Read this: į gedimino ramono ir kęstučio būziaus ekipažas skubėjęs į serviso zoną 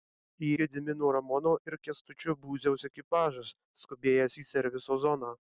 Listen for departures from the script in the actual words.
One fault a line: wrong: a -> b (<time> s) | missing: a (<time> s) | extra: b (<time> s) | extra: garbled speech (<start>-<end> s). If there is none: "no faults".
no faults